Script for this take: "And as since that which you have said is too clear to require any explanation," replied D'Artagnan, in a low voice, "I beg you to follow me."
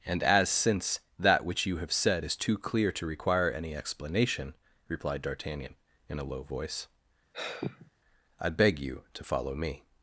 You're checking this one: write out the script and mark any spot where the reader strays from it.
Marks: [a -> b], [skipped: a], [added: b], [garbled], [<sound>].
"And as since that which you have said is too clear to require any explanation," replied D'Artagnan, in a low voice, [sigh] "I beg you to follow me."